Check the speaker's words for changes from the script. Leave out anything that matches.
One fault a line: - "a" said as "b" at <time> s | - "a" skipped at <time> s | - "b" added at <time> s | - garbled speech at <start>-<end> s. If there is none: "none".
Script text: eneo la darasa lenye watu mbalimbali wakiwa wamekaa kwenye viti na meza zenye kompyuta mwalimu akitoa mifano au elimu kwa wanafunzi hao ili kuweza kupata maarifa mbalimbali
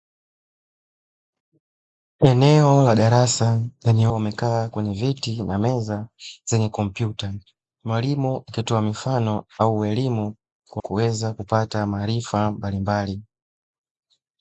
- "watu mbalimbali wakiwa" skipped at 4.1 s
- "wanafunzi hao ili" skipped at 10.8 s